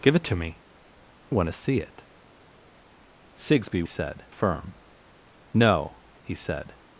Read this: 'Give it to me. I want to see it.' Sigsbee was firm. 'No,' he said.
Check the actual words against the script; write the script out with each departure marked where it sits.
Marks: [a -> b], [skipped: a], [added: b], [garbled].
'Give it to me. [skipped: I] want to see it.' Sigsbee [was -> said] firm. 'No,' he said.